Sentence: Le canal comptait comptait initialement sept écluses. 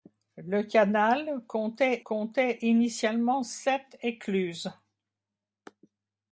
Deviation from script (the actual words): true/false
false